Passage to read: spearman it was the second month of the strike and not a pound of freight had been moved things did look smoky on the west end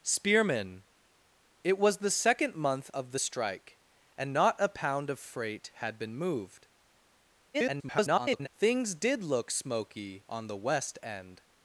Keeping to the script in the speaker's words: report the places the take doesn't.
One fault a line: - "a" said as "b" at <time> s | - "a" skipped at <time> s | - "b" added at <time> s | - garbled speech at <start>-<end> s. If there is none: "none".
- garbled speech at 7.5-8.5 s